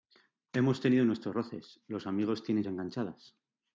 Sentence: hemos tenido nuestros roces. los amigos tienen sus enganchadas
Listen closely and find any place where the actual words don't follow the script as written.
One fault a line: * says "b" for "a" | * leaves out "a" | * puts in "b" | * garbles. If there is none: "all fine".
* leaves out "sus"